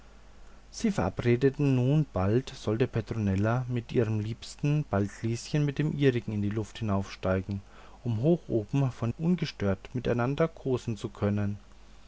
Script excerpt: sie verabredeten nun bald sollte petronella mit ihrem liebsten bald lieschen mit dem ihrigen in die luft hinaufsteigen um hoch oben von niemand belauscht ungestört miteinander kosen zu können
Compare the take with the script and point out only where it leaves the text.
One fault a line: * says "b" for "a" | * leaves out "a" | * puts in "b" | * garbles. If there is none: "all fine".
* leaves out "niemand belauscht"